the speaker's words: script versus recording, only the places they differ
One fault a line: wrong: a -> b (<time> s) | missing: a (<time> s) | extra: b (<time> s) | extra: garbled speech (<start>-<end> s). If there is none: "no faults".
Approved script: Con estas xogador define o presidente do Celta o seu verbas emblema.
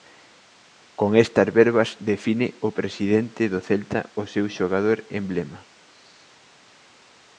wrong: xogador -> verbas (1.6 s)
wrong: verbas -> xogador (4.6 s)